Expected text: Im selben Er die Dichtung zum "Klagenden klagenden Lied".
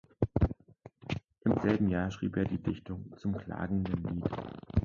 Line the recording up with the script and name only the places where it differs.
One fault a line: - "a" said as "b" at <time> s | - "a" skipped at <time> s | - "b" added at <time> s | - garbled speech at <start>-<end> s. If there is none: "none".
- "Jahr schrieb" added at 1.9 s
- "klagenden" skipped at 4.0 s